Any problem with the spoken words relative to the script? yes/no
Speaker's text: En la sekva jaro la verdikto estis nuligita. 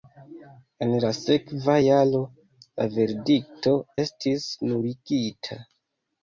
no